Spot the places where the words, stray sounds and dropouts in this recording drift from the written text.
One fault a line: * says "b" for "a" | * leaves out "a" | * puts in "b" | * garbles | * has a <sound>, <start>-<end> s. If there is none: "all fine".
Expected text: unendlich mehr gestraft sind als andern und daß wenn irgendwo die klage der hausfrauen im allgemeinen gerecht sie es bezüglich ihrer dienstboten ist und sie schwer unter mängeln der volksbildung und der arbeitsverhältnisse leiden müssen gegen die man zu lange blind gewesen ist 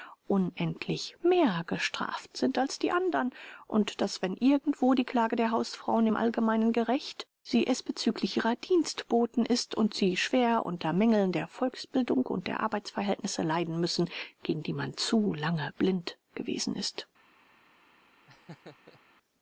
* puts in "die"
* has a laugh, 18.3-19.0 s